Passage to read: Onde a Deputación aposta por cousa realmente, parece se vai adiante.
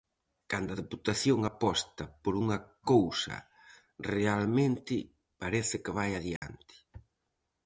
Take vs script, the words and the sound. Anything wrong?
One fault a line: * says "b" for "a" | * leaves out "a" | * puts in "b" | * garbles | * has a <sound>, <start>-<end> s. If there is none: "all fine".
* says "Cando" for "Onde"
* puts in "unha"
* says "que" for "se"
* has a dropout, 6.4-6.4 s